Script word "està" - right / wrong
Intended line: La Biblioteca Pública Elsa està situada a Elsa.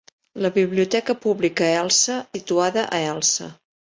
wrong